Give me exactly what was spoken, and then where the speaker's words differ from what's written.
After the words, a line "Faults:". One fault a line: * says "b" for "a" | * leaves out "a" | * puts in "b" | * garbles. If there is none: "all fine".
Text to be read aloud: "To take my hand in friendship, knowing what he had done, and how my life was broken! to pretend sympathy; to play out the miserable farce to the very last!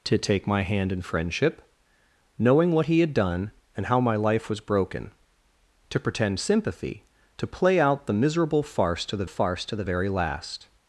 "To take my hand in friendship, knowing what he had done, and how my life was broken! to pretend sympathy; to play out the miserable farce to the farce to the very last!
Faults:
* puts in "farce to the"